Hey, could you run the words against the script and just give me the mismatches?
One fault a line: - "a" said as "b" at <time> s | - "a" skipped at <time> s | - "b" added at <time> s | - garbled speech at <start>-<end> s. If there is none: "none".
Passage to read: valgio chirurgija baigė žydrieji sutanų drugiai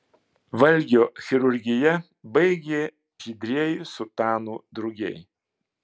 none